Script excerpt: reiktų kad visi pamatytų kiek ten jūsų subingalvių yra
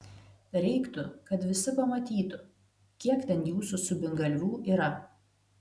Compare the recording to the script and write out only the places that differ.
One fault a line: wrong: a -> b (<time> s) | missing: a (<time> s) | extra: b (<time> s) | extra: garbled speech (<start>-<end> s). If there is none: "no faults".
no faults